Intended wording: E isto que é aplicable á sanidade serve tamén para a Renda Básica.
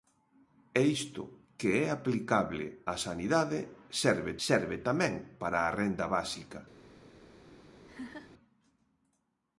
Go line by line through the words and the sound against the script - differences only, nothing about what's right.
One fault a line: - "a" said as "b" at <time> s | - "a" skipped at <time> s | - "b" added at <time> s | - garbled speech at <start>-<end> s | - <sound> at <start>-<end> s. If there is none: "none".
- "serve" added at 4.5 s
- laugh at 7.8-8.3 s